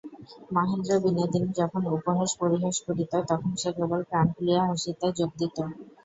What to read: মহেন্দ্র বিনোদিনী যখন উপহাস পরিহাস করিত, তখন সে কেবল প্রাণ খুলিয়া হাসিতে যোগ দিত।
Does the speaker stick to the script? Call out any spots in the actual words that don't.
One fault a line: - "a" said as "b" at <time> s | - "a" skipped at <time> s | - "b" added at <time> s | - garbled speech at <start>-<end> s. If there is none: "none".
none